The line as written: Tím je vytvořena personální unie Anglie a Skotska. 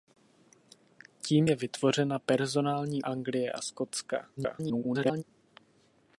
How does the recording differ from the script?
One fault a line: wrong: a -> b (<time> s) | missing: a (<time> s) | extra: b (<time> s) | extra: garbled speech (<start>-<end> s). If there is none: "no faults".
missing: unie (3.0 s)
extra: garbled speech (4.4-5.2 s)